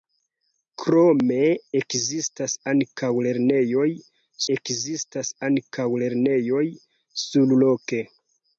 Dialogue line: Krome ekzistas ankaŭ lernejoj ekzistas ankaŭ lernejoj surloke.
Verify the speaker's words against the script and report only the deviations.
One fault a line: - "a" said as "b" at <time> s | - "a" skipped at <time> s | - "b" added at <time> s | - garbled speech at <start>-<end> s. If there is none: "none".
none